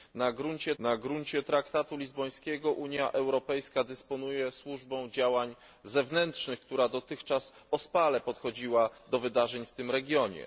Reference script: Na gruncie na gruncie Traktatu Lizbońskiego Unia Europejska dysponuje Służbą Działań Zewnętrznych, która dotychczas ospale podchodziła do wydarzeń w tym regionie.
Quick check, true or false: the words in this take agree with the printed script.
true